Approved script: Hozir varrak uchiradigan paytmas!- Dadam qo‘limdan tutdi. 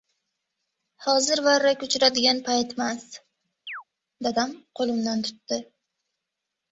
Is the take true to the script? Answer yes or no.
yes